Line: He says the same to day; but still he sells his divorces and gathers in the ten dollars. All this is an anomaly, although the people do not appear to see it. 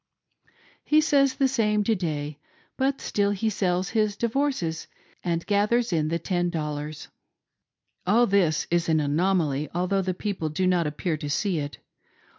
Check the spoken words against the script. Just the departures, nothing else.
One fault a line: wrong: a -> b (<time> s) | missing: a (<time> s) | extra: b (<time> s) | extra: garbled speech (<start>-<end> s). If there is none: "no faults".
no faults